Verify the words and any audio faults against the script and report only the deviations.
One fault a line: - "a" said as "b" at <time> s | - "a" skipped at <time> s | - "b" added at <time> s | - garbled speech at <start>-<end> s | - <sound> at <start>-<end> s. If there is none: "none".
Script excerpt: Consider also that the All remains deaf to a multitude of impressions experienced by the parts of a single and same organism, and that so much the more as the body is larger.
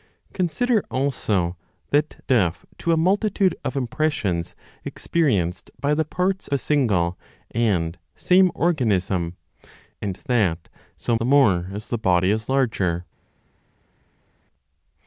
- "the All remains" skipped at 2.2 s
- "of" skipped at 6.5 s
- "much" skipped at 11.1 s